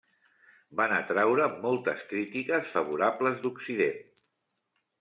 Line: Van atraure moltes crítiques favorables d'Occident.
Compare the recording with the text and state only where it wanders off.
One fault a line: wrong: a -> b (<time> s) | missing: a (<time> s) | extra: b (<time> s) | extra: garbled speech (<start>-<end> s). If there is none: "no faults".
no faults